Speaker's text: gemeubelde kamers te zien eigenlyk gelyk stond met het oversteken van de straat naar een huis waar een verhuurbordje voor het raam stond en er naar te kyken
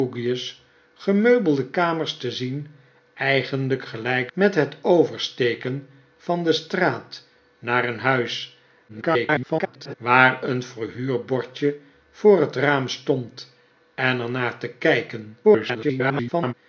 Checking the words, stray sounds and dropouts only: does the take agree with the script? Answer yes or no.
no